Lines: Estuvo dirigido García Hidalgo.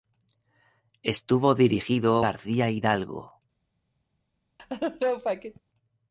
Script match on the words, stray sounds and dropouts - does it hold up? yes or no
no